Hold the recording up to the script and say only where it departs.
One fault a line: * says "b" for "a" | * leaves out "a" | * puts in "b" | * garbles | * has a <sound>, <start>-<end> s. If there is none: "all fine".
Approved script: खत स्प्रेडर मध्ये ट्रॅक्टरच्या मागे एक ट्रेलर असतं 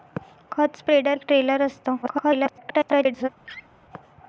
* leaves out "मध्ये ट्रॅक्टरच्या मागे"
* garbles
* has a laugh, 3.4-3.7 s